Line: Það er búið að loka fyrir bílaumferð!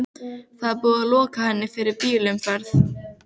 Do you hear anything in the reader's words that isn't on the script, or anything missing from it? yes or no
yes